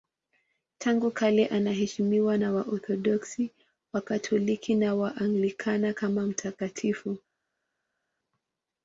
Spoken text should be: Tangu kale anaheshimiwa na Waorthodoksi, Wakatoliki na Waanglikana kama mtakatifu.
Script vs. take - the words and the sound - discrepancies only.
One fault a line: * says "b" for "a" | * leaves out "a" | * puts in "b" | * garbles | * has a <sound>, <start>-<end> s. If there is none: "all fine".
all fine